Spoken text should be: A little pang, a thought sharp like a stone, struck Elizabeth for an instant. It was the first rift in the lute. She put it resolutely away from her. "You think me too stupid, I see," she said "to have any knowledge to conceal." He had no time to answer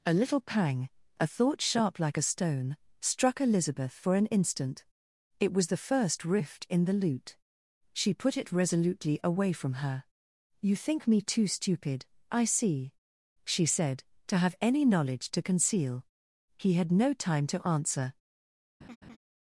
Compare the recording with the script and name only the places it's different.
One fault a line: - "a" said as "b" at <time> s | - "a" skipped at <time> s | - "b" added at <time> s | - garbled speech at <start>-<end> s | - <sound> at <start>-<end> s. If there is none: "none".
- laugh at 18.8-19.2 s